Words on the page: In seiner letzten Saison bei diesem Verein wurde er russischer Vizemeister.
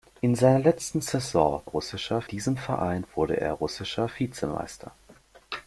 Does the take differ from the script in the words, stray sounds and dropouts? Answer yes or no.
yes